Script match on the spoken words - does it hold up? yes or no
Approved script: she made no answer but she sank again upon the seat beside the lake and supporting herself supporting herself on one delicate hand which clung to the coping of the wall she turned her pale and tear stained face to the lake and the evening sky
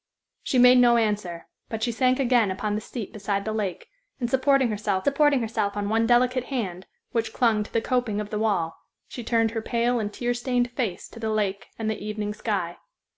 yes